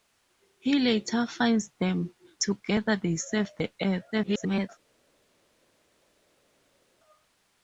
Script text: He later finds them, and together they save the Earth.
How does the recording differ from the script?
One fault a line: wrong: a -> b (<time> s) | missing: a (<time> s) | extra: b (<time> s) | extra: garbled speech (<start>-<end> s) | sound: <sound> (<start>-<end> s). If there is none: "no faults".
missing: and (2.1 s)
extra: garbled speech (4.1-4.7 s)